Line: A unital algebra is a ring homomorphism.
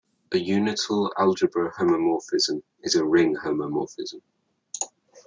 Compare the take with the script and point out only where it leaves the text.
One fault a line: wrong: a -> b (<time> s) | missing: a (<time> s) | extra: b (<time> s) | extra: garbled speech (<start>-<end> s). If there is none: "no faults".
extra: homomorphism (1.8 s)